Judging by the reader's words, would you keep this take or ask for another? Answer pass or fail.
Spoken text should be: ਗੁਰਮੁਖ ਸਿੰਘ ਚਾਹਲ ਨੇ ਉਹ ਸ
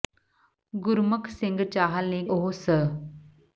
pass